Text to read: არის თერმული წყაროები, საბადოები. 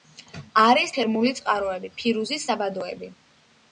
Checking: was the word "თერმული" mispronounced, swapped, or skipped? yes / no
no